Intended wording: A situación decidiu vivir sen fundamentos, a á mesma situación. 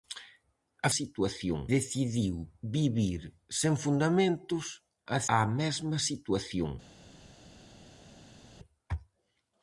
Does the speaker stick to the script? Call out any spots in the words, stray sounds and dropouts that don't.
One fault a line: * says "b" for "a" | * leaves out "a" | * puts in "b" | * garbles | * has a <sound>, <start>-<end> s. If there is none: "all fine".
all fine